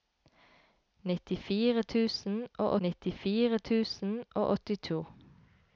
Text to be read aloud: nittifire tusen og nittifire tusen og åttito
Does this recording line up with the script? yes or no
yes